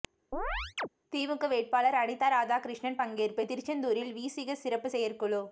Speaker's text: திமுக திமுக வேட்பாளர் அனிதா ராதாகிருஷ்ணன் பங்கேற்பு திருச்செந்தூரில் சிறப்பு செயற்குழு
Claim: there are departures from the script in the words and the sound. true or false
true